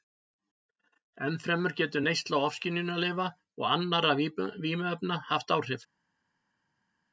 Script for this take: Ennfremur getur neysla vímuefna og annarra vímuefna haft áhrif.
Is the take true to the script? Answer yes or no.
no